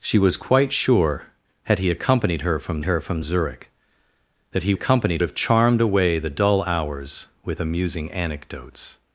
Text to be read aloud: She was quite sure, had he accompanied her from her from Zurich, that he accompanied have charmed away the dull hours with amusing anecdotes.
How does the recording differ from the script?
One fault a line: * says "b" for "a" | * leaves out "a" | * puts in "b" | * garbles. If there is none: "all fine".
all fine